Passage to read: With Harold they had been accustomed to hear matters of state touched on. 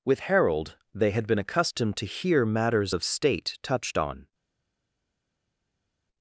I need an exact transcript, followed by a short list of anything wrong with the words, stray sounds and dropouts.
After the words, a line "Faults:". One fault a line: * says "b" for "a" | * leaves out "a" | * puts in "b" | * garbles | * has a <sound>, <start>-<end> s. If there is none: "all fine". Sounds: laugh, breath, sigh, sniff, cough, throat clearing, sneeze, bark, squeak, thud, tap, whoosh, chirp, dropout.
With Harold they had been accustomed to hear matters of state touched on.
Faults:
all fine